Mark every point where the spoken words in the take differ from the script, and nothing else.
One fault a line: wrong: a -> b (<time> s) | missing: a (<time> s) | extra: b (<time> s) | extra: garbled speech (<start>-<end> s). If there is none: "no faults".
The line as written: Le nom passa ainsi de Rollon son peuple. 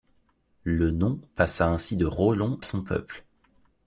no faults